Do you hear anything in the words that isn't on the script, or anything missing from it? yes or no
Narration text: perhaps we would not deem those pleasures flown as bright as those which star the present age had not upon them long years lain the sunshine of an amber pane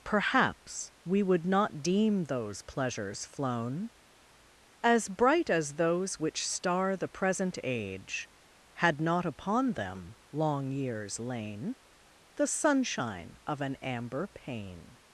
no